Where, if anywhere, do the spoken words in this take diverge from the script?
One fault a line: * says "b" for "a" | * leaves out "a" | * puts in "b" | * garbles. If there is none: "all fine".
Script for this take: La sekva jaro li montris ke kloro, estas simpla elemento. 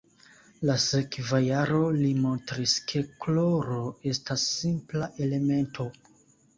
all fine